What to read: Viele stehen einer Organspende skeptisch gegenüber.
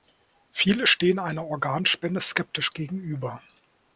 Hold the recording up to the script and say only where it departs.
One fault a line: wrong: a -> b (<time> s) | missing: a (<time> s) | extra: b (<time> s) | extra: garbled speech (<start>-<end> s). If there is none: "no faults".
no faults